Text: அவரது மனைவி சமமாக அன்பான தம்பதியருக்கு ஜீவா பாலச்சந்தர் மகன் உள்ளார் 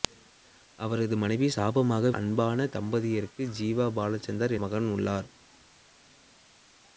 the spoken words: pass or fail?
pass